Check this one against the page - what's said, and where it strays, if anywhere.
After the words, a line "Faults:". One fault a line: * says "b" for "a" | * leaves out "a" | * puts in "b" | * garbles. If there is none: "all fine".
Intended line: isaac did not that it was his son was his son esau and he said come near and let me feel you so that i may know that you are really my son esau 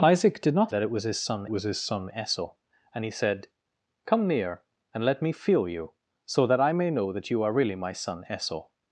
isaac did not that it was his son was his son esau and he said come near and let me feel you so that i may know that you are really my son esau
Faults:
all fine